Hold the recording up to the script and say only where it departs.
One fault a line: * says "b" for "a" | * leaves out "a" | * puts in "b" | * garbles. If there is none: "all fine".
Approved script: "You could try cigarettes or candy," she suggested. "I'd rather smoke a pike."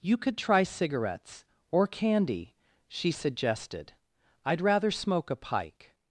all fine